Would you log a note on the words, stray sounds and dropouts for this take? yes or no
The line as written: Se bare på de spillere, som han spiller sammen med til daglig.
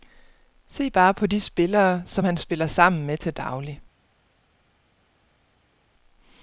no